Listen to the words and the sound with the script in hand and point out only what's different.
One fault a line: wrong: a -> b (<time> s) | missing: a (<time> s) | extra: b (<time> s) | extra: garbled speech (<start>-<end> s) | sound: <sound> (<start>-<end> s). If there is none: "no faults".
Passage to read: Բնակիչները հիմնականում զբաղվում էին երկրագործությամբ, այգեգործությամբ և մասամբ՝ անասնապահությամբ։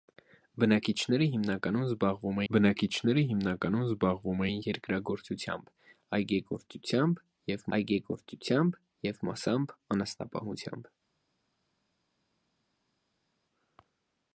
extra: բնակիչները հիմնականում զբաղվում (2.5 s)
extra: այգեգործությամբ և (7.8 s)